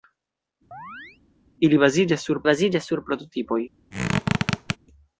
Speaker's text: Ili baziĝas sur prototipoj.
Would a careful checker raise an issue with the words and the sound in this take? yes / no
yes